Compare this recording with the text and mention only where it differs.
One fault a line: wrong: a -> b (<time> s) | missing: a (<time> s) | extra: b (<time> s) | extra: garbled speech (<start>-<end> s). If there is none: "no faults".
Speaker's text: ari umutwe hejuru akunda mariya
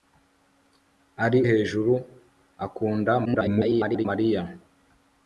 missing: umutwe (1.4 s)
extra: garbled speech (3.2-4.1 s)